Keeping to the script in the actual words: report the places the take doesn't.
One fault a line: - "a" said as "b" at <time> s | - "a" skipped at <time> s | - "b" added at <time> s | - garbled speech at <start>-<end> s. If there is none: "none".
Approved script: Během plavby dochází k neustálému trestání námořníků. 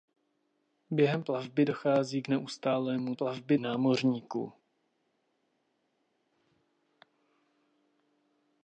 - "trestání" said as "plavby" at 3.1 s